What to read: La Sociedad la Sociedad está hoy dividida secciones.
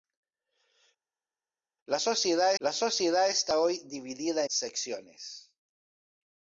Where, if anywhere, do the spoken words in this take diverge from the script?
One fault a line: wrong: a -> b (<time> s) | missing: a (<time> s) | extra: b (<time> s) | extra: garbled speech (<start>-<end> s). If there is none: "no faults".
no faults